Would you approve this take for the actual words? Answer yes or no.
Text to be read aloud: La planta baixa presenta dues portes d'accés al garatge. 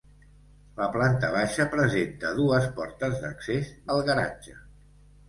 yes